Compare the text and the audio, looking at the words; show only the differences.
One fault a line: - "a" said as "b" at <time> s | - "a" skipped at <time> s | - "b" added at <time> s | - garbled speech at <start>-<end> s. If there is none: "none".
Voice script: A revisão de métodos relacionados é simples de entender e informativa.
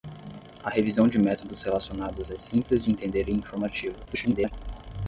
- garbled speech at 4.0-4.5 s